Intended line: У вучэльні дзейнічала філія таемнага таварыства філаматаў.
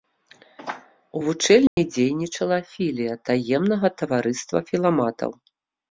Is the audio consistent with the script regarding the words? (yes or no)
yes